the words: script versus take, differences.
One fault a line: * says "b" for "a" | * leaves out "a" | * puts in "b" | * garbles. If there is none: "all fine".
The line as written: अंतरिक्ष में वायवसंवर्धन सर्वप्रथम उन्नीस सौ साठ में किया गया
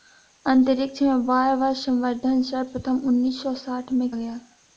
* leaves out "किया"